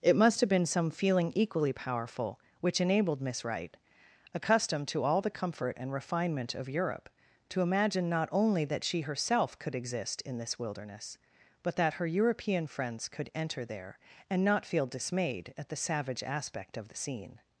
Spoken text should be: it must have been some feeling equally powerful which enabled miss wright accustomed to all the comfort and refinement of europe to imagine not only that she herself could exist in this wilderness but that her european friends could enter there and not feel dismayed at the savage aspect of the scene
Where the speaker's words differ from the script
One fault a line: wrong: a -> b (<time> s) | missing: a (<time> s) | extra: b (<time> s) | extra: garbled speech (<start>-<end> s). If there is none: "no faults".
no faults